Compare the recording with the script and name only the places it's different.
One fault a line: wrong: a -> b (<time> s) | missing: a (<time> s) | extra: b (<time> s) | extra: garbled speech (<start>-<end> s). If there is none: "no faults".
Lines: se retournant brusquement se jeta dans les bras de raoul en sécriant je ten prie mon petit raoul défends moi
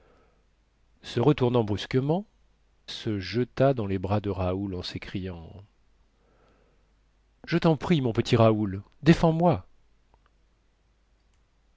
no faults